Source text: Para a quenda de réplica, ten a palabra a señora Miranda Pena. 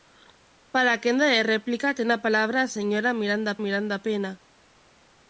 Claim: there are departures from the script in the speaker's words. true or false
true